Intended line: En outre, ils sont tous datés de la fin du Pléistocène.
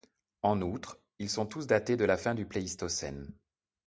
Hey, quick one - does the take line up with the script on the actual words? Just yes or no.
yes